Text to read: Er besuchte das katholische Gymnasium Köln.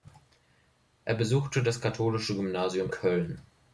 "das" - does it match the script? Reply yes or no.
yes